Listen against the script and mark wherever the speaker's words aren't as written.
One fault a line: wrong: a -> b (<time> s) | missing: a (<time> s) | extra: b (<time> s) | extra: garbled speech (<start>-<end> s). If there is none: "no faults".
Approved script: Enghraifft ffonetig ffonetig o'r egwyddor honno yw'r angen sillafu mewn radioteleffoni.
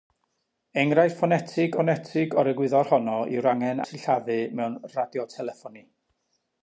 no faults